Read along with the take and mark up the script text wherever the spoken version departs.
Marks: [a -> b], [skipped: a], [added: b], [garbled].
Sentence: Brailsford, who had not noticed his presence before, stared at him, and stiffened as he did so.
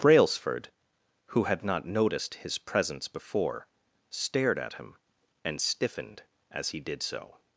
Brailsford, who had not noticed his presence before, stared at him, and stiffened as he did so.